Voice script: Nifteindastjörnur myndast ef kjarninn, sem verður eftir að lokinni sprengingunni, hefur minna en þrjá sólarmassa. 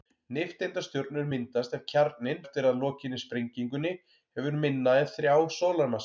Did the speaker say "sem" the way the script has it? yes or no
no